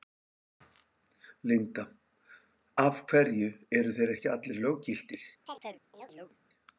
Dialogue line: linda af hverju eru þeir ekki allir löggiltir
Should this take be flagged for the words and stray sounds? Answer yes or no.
yes